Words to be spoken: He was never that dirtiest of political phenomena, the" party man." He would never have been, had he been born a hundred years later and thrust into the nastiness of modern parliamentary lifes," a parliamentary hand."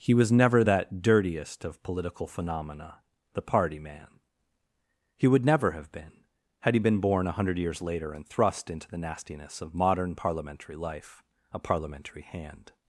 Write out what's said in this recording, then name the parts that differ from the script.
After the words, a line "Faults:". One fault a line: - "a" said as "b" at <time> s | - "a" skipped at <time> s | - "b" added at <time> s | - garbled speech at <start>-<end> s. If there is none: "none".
He was never that dirtiest of political phenomena, the" party man." He would never have been, had he been born a hundred years later and thrust into the nastiness of modern parliamentary life," a parliamentary hand."
Faults:
- "lifes" said as "life" at 10.8 s